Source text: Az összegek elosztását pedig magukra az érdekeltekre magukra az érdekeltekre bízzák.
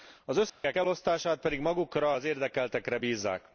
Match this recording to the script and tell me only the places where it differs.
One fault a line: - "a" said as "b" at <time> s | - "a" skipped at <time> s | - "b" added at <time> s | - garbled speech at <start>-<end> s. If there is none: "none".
- "magukra az érdekeltekre" skipped at 3.0 s